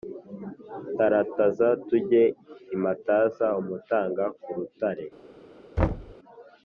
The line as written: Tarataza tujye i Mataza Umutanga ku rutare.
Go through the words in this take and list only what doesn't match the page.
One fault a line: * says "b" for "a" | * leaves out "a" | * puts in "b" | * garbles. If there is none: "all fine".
all fine